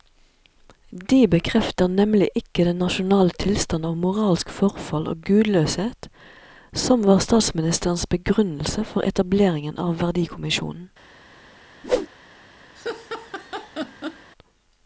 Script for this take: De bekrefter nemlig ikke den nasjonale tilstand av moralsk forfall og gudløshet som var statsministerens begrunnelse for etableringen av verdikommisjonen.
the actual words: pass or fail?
pass